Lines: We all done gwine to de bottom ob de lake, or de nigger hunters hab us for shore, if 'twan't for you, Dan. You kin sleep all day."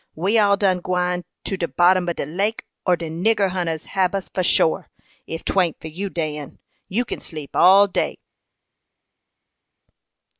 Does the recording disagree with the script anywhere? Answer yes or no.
no